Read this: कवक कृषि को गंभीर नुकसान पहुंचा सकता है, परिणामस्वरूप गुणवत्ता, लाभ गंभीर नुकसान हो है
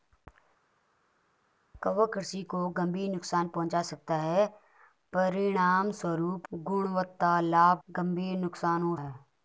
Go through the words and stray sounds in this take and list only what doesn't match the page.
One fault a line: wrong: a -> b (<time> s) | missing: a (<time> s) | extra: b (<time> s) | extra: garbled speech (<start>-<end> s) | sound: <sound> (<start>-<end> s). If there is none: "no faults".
no faults